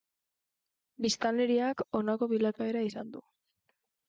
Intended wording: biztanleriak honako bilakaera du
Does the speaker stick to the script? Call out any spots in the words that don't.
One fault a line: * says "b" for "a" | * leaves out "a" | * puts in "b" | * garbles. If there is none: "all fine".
* puts in "izan"